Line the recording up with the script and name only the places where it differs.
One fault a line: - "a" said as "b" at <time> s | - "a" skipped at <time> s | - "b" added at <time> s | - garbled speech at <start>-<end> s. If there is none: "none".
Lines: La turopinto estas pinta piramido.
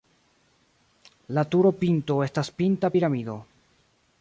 none